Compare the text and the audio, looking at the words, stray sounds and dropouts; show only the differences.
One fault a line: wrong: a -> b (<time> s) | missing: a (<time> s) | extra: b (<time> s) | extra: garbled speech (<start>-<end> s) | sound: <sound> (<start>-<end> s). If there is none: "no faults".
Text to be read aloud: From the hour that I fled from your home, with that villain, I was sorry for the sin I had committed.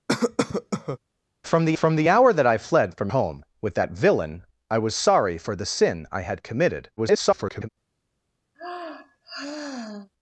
sound: cough (0.1-1.0 s)
extra: from the (1.8 s)
missing: your (3.1 s)
extra: garbled speech (7.0-7.7 s)
sound: sigh (8.5-10.1 s)